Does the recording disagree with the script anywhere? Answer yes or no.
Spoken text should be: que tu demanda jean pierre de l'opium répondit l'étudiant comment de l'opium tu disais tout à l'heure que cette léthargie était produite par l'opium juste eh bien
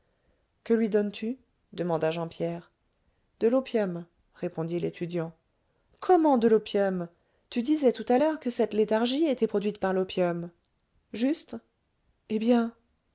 yes